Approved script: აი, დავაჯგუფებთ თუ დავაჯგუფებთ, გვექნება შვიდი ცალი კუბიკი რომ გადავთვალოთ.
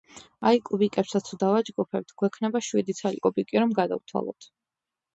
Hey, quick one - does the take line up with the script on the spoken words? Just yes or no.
no